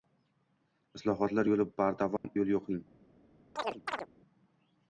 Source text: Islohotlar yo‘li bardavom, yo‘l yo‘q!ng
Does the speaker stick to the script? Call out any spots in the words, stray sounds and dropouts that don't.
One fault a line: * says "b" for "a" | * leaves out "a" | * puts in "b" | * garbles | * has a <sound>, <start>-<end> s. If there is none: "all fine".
* has a dropout, 2.2-2.2 s
* has a chirp, 3.6-4.1 s